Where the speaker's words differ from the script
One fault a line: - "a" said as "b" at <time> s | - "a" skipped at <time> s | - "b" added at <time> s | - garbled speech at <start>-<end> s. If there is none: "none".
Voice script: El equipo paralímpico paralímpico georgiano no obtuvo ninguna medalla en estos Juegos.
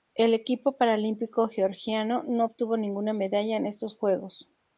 - "paralímpico" skipped at 1.5 s